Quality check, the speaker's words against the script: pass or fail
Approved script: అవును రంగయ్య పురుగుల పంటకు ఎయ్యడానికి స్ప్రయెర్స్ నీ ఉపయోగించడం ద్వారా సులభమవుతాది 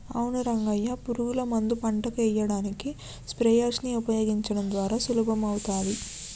fail